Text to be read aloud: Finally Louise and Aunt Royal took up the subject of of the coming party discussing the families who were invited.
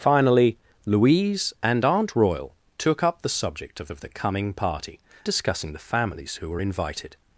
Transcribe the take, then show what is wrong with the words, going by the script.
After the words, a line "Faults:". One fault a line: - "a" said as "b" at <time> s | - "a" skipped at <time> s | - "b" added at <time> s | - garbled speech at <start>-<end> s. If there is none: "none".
Finally Louise and Aunt Royal took up the subject of of the coming party discussing the families who were invited.
Faults:
none